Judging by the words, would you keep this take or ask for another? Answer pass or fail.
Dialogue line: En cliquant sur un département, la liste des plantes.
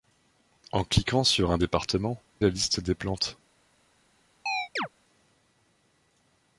pass